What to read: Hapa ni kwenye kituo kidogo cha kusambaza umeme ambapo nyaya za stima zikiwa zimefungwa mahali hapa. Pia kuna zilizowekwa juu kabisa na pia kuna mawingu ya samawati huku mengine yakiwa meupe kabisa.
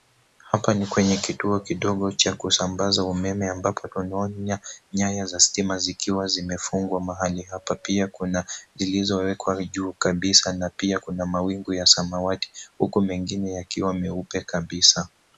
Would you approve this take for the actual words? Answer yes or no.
no